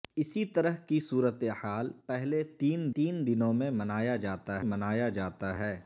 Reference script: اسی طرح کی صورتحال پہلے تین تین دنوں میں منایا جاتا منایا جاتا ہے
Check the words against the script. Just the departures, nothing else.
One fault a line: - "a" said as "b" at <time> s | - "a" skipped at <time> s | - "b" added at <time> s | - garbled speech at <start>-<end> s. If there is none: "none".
none